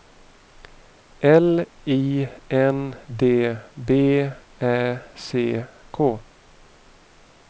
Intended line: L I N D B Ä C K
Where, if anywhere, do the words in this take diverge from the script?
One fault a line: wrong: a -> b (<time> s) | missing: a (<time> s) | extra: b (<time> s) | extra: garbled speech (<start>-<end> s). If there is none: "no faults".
no faults